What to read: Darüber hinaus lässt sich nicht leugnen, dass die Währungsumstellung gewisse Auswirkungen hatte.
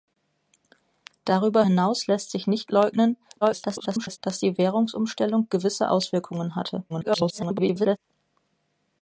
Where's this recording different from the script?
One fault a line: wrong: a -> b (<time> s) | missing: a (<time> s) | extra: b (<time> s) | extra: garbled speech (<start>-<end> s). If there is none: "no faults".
extra: garbled speech (3.4-4.2 s)
extra: garbled speech (6.9-8.0 s)